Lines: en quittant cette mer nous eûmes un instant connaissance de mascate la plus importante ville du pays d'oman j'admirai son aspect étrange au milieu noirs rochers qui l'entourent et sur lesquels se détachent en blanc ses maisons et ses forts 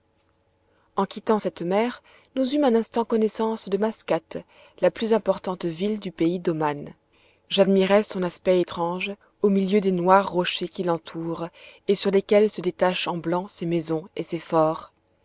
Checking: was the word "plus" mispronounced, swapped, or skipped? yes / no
no